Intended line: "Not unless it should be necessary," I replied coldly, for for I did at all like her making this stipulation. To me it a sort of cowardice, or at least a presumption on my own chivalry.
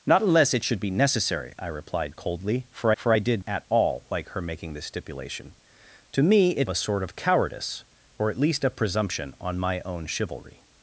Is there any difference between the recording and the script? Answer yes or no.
no